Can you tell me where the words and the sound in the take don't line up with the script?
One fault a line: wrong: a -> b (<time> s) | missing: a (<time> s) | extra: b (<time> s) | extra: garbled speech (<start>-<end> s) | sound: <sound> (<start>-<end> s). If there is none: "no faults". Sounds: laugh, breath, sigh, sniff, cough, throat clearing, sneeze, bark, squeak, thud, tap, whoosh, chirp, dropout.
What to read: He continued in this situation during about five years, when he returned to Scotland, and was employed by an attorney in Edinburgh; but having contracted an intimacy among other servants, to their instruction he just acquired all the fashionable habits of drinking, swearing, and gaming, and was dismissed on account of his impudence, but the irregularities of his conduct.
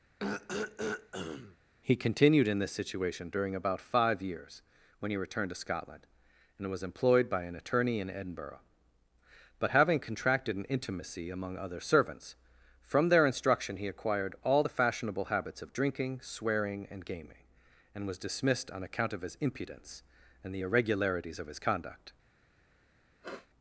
sound: throat clearing (0.2-1.6 s)
wrong: to -> from (12.8 s)
missing: just (13.9 s)
wrong: but -> and (20.4 s)
sound: sniff (23.2-23.5 s)